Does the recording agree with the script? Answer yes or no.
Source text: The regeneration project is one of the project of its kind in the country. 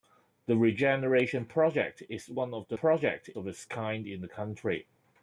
yes